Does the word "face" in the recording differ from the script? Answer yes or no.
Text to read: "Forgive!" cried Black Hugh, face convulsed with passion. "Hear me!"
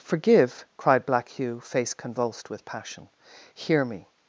no